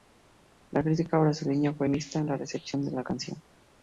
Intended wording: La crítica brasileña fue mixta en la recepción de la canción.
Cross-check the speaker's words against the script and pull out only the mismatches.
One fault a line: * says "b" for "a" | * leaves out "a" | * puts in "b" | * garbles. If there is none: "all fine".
all fine